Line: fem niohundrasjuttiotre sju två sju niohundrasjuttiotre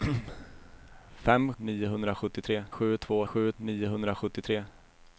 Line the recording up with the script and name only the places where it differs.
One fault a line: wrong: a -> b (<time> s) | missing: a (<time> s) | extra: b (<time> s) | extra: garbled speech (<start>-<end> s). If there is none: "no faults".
no faults